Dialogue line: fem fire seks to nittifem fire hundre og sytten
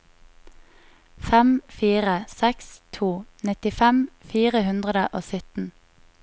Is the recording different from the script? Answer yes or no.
no